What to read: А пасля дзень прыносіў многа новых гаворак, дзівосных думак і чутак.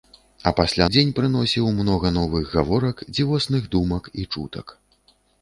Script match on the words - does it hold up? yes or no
yes